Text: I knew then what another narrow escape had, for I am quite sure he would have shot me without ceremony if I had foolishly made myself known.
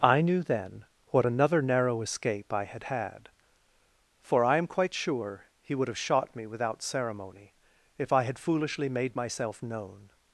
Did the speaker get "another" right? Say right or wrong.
right